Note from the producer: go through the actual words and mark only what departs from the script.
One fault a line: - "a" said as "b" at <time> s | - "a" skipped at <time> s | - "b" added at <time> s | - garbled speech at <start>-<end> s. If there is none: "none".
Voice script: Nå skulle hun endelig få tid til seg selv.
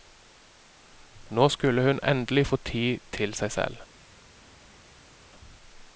none